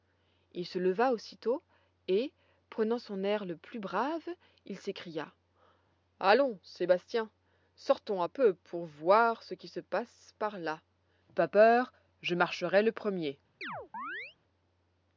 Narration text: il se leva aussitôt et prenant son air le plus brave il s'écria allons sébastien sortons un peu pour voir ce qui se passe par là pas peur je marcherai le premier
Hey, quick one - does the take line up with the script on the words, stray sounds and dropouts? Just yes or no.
no